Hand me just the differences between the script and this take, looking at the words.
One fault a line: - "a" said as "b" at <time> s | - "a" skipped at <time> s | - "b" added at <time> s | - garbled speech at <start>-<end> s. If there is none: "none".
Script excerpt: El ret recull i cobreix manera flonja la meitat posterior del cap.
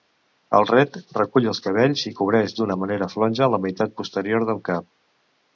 - "els cabells" added at 1.5 s
- "d'una" added at 2.6 s